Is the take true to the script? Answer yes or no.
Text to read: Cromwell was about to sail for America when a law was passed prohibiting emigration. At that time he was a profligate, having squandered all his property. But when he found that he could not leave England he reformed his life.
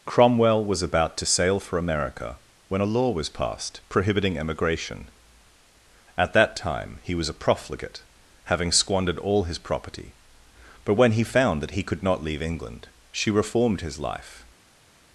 no